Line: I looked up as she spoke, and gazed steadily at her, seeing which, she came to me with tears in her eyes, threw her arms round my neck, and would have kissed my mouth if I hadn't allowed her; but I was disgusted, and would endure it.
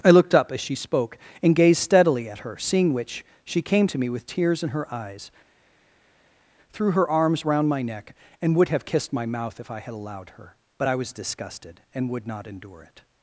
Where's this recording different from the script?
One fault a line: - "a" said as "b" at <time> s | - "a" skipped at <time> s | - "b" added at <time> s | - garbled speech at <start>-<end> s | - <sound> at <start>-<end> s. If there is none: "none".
- "hadn't" said as "had" at 9.8 s
- "not" added at 12.3 s